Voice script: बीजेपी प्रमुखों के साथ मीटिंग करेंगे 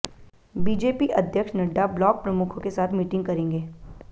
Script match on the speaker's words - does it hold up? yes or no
no